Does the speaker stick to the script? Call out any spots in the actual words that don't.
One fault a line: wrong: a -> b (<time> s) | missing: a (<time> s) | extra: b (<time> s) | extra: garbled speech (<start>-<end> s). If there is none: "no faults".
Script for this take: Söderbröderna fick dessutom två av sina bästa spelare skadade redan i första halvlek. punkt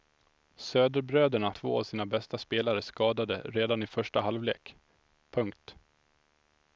missing: fick dessutom (1.5 s)